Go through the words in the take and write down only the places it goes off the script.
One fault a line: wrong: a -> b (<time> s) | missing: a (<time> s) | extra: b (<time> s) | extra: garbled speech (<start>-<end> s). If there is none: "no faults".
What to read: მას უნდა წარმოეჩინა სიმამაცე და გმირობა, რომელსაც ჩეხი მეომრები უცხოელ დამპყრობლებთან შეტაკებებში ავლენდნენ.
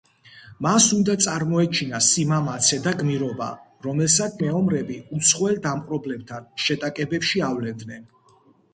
missing: ჩეხი (4.4 s)